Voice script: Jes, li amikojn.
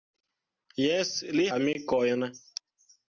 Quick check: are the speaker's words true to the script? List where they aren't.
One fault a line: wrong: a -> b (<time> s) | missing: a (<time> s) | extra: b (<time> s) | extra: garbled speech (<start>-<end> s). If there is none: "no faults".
no faults